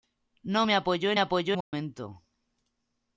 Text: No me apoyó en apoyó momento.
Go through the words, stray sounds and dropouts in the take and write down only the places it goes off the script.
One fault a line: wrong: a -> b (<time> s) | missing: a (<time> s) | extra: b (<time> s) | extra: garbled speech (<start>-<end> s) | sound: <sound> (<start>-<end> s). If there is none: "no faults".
sound: dropout (1.6-1.7 s)